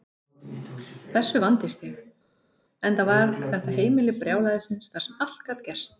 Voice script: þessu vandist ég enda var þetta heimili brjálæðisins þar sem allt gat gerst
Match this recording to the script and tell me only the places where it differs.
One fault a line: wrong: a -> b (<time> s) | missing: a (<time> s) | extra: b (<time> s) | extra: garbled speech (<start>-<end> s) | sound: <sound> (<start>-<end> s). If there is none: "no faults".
no faults